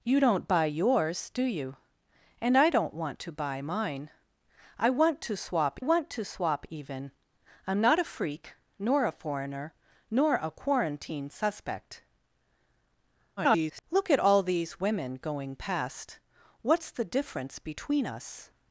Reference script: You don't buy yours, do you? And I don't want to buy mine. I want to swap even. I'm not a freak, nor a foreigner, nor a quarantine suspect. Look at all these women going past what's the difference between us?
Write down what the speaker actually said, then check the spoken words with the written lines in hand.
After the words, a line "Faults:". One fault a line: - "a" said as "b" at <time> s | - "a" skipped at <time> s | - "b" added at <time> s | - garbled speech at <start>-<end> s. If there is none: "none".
You don't buy yours, do you? And I don't want to buy mine. I want to swap want to swap even. I'm not a freak, nor a foreigner, nor a quarantine suspect. [garbled] Look at all these women going past what's the difference between us?
Faults:
- "want to swap" added at 5.8 s
- garbled speech at 13.4-13.8 s